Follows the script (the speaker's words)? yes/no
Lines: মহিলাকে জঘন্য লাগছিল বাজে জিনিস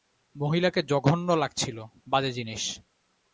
yes